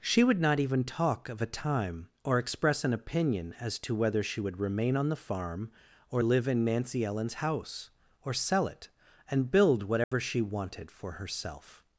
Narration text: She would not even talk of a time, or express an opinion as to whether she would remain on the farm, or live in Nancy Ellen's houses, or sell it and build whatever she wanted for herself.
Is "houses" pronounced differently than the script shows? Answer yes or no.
yes